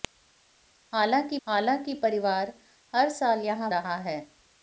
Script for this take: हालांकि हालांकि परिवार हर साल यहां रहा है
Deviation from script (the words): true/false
false